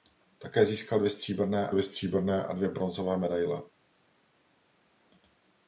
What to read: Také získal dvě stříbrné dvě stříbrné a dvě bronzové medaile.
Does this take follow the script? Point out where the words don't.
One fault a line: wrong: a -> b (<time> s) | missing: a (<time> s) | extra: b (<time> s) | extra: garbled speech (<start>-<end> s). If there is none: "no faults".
no faults